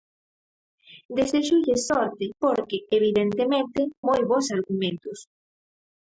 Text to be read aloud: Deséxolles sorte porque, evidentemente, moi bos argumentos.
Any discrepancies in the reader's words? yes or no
no